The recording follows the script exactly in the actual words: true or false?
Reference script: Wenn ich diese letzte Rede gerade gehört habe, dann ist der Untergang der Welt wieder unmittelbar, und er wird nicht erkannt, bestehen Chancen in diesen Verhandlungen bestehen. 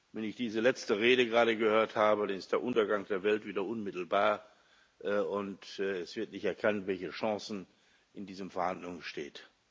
false